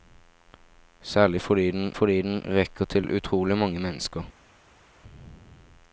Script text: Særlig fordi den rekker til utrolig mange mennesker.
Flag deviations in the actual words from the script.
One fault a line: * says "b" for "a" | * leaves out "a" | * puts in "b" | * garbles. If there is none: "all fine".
* puts in "fordi den"